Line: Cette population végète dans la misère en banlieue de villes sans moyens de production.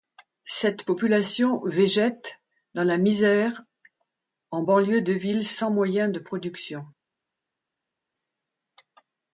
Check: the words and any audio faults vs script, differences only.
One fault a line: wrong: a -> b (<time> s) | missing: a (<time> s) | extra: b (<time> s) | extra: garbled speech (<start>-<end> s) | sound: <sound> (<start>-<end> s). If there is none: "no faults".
no faults